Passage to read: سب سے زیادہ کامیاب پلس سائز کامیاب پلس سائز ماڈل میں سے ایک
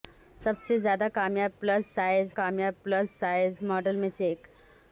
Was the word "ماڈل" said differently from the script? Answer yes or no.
no